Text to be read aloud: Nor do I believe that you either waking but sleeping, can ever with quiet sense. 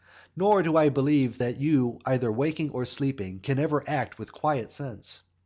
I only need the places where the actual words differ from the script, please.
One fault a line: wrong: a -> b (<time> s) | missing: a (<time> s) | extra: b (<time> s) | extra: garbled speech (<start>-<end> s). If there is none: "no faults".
wrong: but -> or (2.7 s)
extra: act (3.9 s)